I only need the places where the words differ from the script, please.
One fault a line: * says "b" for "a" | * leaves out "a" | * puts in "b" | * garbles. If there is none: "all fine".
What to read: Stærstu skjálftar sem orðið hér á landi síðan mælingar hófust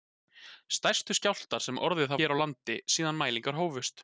all fine